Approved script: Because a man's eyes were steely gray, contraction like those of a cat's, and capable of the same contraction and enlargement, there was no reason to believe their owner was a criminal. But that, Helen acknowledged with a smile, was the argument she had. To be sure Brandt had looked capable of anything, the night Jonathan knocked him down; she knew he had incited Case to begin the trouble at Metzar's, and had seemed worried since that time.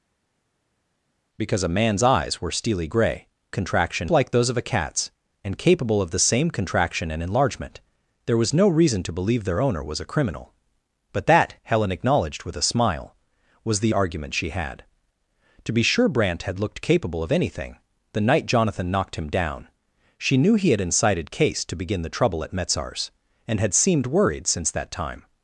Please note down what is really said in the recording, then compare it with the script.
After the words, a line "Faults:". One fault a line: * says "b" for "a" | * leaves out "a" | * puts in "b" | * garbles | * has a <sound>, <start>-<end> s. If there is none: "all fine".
Because a man's eyes were steely gray, contraction like those of a cat's, and capable of the same contraction and enlargement, there was no reason to believe their owner was a criminal. But that, Helen acknowledged with a smile, was the argument she had. To be sure Brandt had looked capable of anything, the night Jonathan knocked him down; she knew he had incited Case to begin the trouble at Metzar's, and had seemed worried since that time.
Faults:
all fine